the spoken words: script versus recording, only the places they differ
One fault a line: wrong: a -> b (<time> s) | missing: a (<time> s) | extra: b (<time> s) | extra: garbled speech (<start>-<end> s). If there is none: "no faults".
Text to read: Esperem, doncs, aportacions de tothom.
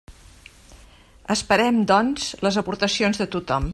extra: les (2.5 s)